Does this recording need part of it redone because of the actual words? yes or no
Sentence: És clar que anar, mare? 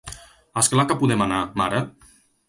yes